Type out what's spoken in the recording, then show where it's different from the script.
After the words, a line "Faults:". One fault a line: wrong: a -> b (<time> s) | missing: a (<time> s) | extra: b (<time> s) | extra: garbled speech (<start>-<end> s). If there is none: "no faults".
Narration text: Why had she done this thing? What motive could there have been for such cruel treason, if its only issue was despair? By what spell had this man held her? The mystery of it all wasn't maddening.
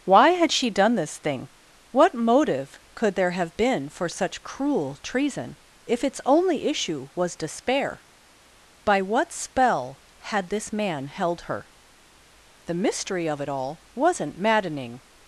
Why had she done this thing? What motive could there have been for such cruel treason, if its only issue was despair? By what spell had this man held her? The mystery of it all wasn't maddening.
Faults:
no faults